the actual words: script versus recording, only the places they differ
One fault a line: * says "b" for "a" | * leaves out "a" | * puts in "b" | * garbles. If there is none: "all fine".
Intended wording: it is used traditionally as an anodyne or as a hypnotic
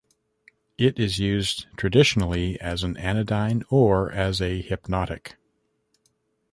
all fine